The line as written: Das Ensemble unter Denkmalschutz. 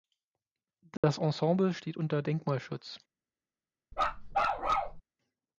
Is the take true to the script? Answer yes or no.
no